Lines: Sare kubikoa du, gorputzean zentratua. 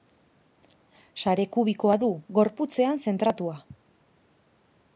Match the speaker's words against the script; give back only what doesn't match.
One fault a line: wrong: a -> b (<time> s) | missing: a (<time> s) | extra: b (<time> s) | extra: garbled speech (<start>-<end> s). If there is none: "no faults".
no faults